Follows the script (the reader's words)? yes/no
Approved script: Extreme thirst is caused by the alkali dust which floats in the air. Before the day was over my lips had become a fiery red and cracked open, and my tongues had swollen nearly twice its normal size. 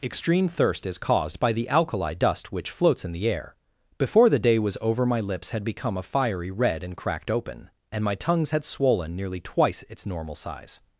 yes